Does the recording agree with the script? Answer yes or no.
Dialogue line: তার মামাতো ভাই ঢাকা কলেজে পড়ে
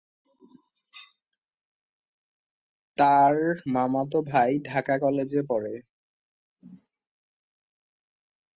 yes